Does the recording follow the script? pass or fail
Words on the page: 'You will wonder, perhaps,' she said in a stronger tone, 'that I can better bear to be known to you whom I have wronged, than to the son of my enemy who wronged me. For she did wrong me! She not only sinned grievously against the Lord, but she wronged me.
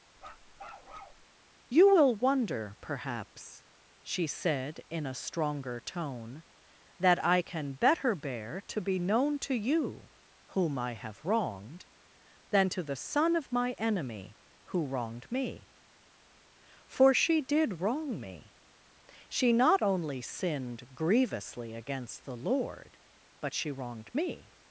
pass